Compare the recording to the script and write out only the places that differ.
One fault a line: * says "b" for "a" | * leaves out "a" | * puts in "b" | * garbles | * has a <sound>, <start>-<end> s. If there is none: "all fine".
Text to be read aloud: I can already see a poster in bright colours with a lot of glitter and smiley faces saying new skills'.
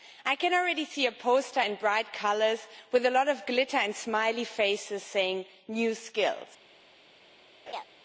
* has a laugh, 7.7-7.8 s